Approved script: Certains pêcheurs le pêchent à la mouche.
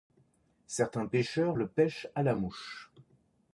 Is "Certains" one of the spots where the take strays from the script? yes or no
no